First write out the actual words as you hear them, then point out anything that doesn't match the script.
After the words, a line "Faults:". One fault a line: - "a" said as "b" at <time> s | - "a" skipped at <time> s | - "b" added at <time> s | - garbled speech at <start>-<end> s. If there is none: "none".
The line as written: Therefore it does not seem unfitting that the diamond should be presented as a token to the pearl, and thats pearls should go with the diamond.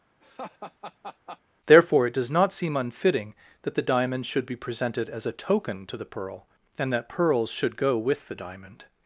Therefore it does not seem unfitting that the diamond should be presented as a token to the pearl, and that pearls should go with the diamond.
Faults:
- "thats" said as "that" at 6.9 s